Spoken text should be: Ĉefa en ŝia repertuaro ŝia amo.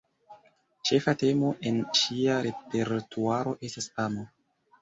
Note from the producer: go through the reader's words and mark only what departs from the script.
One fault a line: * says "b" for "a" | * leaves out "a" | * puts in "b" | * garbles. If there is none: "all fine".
* puts in "temo"
* says "estas" for "ŝia"